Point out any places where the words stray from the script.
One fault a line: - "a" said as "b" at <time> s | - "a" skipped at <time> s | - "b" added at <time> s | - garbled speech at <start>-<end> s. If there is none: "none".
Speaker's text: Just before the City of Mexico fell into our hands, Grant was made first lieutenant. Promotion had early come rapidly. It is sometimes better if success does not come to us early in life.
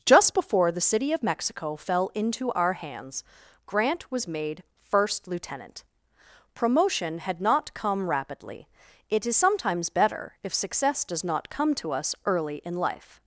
- "early" said as "not" at 7.4 s